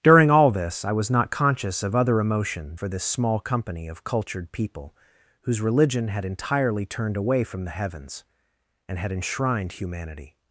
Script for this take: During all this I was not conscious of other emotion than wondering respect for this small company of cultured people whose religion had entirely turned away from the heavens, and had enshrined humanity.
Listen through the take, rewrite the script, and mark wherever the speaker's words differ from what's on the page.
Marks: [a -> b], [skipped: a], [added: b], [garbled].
During all this I was not conscious of other emotion [skipped: than wondering respect] for this small company of cultured people whose religion had entirely turned away from the heavens, and had enshrined humanity.